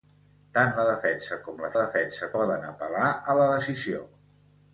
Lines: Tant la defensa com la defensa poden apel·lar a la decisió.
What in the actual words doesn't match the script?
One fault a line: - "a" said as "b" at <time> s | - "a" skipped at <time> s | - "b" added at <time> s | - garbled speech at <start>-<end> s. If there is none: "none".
none